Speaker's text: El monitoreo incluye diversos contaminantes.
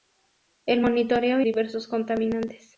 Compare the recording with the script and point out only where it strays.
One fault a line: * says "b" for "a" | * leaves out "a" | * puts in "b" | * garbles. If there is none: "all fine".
* leaves out "incluye"